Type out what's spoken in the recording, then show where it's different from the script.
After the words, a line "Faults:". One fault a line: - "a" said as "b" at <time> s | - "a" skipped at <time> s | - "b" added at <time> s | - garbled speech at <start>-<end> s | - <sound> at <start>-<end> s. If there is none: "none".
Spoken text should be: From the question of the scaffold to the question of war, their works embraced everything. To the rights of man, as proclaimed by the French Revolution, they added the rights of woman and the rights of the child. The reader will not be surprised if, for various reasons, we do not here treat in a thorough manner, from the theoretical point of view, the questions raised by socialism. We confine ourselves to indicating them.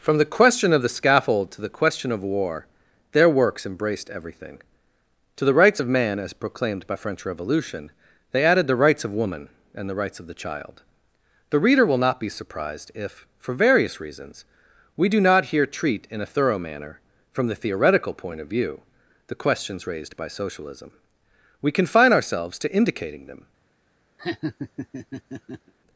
From the question of the scaffold to the question of war, their works embraced everything. To the rights of man, as proclaimed by French Revolution, they added the rights of woman and the rights of the child. The reader will not be surprised if, for various reasons, we do not here treat in a thorough manner, from the theoretical point of view, the questions raised by socialism. We confine ourselves to indicating them.
Faults:
- "the" skipped at 6.9 s
- laugh at 24.2-25.7 s